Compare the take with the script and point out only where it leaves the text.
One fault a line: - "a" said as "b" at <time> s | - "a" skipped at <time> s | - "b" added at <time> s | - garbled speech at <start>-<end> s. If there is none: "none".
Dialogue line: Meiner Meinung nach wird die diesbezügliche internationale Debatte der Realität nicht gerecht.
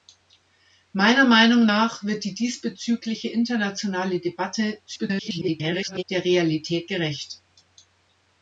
- garbled speech at 4.9-6.0 s
- "nicht" skipped at 6.9 s